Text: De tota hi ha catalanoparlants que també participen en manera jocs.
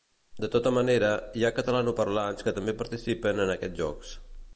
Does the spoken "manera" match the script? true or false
false